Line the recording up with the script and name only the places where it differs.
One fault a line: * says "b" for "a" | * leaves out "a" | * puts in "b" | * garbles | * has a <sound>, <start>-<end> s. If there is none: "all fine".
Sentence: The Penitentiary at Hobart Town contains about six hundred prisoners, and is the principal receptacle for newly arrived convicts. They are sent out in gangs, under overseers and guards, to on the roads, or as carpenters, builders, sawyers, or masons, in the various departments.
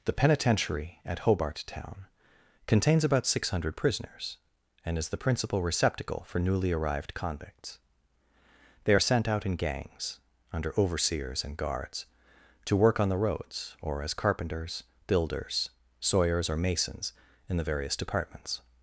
* puts in "work"